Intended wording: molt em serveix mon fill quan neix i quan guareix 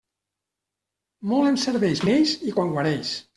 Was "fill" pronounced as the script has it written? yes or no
no